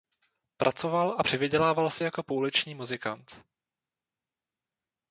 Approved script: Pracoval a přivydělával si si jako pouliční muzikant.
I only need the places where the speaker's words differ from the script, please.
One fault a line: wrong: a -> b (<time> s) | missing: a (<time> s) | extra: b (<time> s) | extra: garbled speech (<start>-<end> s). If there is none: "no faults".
missing: si (2.0 s)